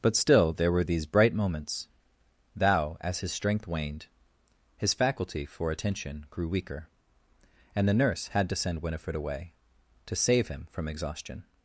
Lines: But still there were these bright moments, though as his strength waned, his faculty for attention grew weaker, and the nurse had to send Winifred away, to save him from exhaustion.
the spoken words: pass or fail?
fail